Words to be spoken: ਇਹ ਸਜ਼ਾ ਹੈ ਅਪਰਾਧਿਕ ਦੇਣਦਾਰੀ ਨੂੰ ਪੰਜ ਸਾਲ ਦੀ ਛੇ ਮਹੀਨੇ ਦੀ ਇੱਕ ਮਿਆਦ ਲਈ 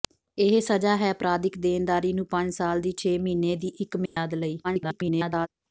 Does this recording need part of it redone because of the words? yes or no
yes